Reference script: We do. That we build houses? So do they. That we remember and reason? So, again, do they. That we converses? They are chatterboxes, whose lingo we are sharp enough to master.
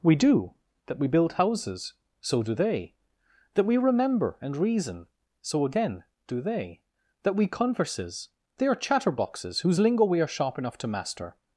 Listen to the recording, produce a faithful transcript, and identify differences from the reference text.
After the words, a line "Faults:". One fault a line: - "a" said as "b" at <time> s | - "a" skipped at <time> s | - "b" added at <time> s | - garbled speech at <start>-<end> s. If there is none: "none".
We do. That we build houses? So do they. That we remember and reason? So, again, do they. That we converses? They are chatterboxes, whose lingo we are sharp enough to master.
Faults:
none